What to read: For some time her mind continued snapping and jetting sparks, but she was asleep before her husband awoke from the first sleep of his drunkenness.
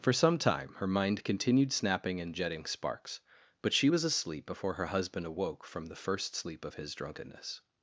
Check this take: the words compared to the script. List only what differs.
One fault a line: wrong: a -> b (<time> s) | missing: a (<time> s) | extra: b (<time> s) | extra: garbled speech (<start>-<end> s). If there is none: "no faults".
no faults